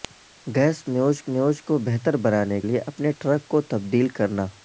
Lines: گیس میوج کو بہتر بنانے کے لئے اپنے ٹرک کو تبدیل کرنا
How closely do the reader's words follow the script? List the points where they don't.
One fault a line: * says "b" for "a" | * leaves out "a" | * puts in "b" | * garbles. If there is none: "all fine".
* puts in "میوج"
* leaves out "کے"